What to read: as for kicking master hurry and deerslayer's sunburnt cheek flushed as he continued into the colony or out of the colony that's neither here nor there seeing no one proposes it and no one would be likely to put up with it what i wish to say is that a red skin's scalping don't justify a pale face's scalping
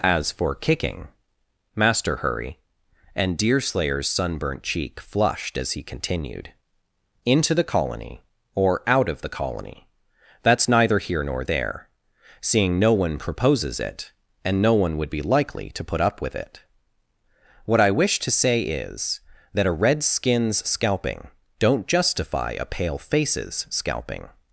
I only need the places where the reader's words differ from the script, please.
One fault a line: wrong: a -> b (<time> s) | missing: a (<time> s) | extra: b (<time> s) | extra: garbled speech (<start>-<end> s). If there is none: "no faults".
no faults